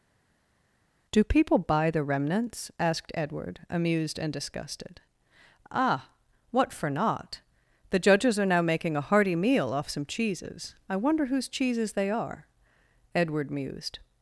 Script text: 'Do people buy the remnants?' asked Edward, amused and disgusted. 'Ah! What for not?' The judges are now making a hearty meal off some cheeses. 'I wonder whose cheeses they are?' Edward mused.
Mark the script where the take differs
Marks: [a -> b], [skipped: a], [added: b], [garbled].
'Do people buy the remnants?' asked Edward, amused and disgusted. 'Ah! What for not?' The judges are now making a hearty meal off some cheeses. 'I wonder whose cheeses they are?' Edward mused.